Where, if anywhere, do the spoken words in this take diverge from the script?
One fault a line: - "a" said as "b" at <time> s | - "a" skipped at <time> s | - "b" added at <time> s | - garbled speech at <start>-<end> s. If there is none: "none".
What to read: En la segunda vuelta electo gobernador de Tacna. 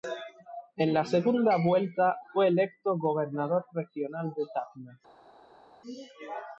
- "fue" added at 2.3 s
- "regional" added at 3.7 s